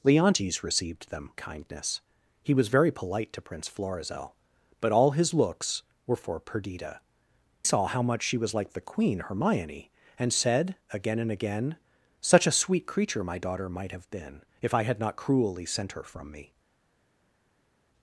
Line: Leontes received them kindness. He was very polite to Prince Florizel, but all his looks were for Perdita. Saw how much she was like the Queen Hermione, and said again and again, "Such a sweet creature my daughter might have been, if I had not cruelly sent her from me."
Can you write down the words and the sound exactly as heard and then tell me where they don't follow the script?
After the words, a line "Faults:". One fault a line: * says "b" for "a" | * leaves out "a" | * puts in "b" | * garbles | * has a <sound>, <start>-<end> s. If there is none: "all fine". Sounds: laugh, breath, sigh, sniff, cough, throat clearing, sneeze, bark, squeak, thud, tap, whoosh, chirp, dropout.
Leontes received them kindness. He was very polite to Prince Florizel, but all his looks were for Perdita. Saw how much she was like the Queen Hermione, and said again and again, "Such a sweet creature my daughter might have been, if I had not cruelly sent her from me."
Faults:
all fine